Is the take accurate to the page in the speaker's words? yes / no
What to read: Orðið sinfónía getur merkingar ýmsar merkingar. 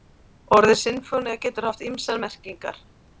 no